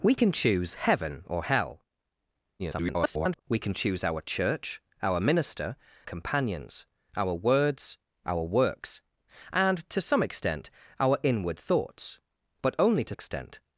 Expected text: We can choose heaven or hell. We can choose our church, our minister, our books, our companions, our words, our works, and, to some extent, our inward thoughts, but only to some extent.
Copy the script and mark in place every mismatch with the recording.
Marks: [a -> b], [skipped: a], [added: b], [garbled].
We can choose heaven or hell. [garbled] We can choose our church, our minister, [skipped: our books, our] companions, our words, our works, and, to some extent, our inward thoughts, but only to [skipped: some] extent.